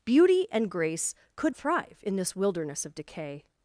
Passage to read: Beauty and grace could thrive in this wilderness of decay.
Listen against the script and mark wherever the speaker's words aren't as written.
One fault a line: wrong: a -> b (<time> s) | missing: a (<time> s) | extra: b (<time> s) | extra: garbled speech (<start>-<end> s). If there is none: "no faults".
no faults